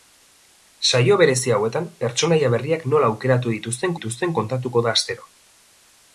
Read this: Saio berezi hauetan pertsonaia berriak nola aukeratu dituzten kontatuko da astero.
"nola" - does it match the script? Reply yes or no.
yes